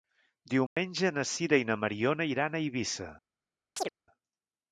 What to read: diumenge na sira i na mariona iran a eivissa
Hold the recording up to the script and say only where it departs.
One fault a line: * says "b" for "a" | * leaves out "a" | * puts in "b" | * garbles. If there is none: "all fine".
all fine